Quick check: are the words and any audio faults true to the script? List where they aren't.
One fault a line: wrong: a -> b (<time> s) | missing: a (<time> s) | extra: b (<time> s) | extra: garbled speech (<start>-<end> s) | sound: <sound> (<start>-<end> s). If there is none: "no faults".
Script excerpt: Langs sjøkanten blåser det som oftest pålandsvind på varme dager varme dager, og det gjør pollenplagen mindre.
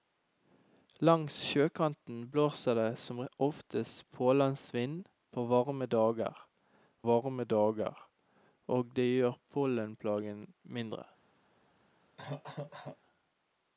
sound: cough (12.2-13.0 s)